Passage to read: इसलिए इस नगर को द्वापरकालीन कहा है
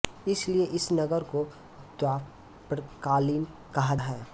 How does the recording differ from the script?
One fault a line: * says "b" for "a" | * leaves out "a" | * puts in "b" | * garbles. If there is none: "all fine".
all fine